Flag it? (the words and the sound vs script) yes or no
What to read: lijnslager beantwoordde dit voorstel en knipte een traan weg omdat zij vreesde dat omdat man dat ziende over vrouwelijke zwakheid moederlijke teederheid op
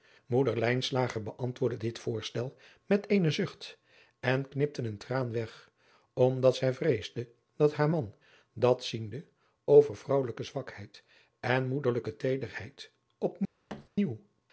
yes